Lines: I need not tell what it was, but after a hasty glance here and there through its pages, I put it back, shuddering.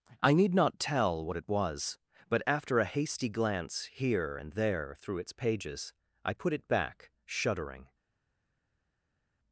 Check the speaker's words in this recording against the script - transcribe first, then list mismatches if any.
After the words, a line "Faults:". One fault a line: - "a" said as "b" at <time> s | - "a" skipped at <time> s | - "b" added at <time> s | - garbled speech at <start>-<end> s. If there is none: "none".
I need not tell what it was, but after a hasty glance here and there through its pages, I put it back, shuddering.
Faults:
none